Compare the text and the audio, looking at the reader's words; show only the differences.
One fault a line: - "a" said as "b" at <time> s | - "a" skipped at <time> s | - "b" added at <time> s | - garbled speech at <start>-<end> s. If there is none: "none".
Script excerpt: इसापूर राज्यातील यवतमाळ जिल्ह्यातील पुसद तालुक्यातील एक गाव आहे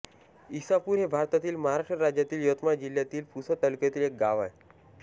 - "हे भारतातील महाराष्ट्र" added at 1.0 s